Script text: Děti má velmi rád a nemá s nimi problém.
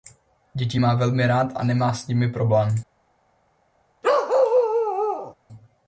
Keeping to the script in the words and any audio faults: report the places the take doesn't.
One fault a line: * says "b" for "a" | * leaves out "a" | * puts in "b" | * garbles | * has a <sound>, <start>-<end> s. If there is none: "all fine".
* has a bark, 4.0-5.3 s